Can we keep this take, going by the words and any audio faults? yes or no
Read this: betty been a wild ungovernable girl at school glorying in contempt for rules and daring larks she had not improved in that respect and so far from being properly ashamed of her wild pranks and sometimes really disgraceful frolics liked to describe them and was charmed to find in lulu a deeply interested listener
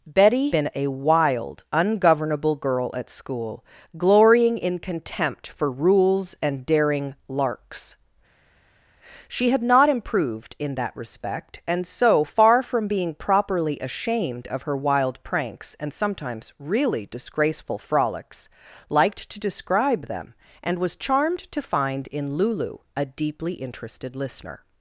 yes